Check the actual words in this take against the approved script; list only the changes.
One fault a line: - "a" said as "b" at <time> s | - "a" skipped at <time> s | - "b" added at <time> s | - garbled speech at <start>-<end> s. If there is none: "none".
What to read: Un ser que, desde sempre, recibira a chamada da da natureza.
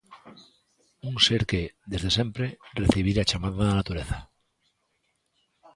- "da" skipped at 3.8 s